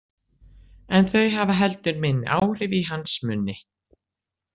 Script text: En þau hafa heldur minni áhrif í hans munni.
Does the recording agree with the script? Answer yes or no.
yes